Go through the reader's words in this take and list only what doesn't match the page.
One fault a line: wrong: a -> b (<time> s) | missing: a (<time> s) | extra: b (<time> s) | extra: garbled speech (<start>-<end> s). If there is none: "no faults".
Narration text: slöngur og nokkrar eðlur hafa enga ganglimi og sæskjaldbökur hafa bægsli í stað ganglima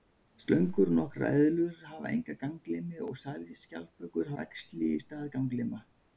missing: hafa (4.3 s)